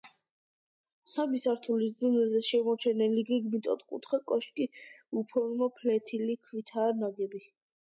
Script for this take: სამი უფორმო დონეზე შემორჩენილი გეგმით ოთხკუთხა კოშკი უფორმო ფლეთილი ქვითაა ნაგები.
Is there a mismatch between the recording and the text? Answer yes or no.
yes